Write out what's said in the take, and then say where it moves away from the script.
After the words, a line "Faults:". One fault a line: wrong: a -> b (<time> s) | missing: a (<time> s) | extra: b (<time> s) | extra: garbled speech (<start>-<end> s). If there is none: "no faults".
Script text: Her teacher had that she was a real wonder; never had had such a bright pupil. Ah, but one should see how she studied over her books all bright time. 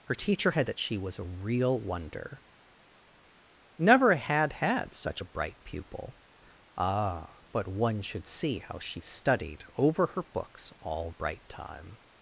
Her teacher had that she was a real wonder; never had had such a bright pupil. Ah, but one should see how she studied over her books all bright time.
Faults:
no faults